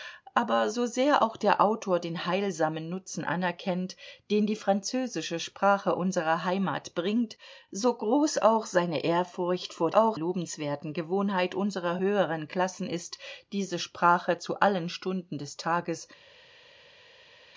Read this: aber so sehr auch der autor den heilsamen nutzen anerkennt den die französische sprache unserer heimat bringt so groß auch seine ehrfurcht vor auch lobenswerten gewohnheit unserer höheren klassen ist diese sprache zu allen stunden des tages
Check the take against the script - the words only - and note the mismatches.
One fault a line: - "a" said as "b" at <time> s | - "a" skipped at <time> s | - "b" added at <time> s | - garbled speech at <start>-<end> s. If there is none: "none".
none